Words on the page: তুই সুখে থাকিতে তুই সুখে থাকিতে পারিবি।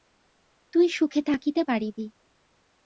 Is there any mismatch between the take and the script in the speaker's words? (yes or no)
yes